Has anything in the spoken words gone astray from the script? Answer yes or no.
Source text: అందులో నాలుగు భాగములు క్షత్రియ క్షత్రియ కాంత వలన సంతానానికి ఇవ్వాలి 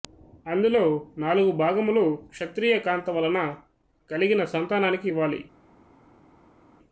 yes